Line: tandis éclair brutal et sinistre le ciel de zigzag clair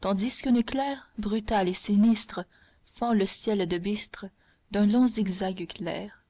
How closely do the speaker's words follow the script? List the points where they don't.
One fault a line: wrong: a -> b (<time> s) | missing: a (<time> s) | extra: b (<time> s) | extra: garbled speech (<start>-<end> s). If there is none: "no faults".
extra: qu'un (0.4 s)
extra: fend (3.0 s)
extra: bistre d'un long (3.8 s)